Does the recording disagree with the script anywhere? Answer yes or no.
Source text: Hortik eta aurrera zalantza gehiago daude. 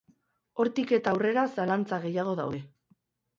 no